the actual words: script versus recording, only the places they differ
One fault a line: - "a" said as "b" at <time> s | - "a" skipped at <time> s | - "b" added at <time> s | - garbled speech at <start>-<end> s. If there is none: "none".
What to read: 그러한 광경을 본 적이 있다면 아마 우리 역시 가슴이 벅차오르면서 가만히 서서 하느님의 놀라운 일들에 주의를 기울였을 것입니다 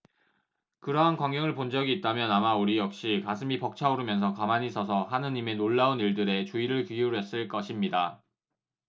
none